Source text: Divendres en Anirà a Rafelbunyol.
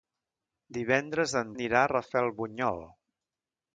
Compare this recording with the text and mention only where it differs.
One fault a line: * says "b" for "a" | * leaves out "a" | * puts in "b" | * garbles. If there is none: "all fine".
all fine